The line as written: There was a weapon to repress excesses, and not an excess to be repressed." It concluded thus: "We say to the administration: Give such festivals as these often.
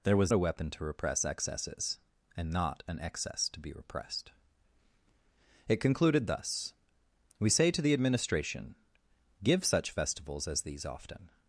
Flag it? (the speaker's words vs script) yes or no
no